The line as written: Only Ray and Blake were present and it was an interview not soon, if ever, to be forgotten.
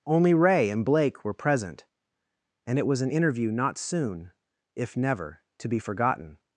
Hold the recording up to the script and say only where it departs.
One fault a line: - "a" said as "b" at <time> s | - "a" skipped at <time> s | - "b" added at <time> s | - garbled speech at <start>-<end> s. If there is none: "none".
- "ever" said as "never" at 5.0 s